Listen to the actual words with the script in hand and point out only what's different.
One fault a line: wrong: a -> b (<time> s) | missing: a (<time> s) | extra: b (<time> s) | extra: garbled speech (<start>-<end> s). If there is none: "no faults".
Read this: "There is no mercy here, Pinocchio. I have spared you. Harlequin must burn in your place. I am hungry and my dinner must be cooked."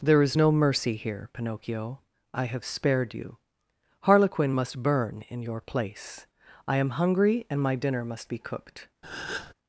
no faults